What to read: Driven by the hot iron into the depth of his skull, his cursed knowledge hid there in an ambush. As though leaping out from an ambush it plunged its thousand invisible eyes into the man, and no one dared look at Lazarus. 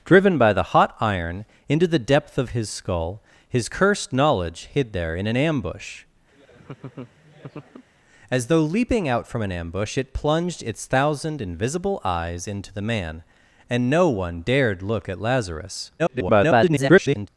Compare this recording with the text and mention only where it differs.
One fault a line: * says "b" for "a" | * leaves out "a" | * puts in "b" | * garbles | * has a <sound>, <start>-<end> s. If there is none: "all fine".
* has a laugh, 6.3-7.9 s
* garbles